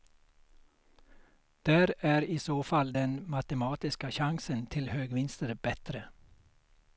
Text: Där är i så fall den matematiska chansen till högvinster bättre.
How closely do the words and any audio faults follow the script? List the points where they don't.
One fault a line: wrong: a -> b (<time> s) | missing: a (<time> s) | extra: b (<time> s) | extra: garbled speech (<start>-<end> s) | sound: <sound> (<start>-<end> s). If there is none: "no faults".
no faults